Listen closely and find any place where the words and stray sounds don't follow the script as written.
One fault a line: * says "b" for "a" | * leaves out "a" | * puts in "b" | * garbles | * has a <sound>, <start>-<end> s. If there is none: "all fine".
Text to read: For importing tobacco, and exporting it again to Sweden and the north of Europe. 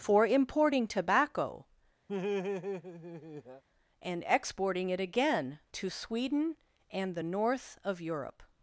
* has a laugh, 2.1-3.6 s